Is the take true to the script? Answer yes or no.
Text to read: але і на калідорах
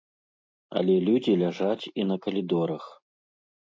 no